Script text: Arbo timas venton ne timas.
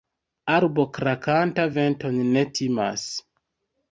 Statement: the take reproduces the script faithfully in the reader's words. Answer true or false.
false